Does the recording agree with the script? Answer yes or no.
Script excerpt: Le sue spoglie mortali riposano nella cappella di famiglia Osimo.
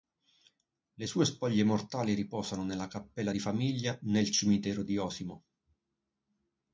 no